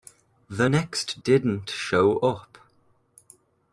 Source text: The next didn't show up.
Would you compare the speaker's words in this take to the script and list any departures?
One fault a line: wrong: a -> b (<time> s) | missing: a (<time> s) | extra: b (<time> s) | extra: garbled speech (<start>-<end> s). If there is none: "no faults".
no faults